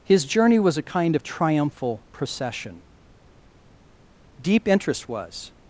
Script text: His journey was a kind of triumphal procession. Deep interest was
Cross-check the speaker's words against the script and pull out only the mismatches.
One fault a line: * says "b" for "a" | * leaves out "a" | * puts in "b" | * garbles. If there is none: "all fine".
all fine